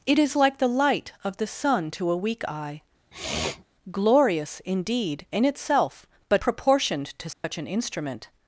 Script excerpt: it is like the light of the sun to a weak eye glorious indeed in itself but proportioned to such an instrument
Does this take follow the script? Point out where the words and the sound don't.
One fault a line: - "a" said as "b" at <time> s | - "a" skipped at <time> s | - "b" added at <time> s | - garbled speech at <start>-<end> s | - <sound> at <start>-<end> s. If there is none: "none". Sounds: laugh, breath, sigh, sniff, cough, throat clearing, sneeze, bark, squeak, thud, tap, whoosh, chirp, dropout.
- sniff at 3.1-3.6 s
- dropout at 7.3-7.4 s